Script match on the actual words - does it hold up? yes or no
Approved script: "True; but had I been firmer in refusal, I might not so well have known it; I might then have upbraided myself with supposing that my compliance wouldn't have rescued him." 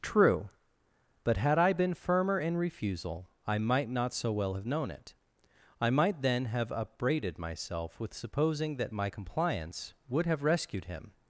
no